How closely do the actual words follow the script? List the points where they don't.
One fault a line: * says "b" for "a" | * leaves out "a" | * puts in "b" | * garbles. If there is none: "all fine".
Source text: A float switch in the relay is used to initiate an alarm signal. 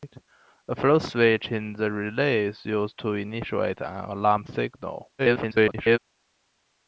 * garbles